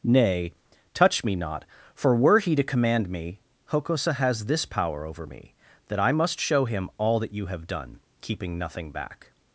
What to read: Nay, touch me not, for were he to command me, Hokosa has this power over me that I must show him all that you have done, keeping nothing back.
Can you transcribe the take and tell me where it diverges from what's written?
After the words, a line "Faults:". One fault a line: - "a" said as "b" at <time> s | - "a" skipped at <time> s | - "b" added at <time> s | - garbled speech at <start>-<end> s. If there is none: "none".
Nay, touch me not, for were he to command me, Hokosa has this power over me that I must show him all that you have done, keeping nothing back.
Faults:
none